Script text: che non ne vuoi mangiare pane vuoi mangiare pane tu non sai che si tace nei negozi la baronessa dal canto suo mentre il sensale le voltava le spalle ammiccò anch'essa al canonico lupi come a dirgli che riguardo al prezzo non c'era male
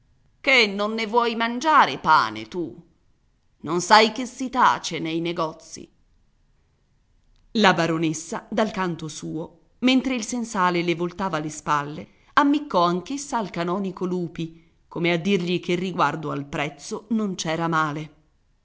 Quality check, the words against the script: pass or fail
fail